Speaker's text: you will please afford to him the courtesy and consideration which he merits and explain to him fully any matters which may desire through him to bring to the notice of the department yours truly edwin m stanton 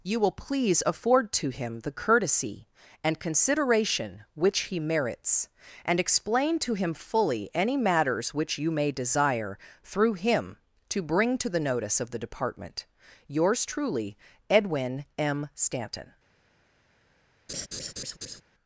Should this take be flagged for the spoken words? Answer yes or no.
yes